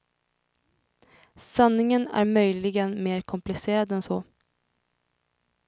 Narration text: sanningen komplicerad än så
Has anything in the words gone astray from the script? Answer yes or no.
yes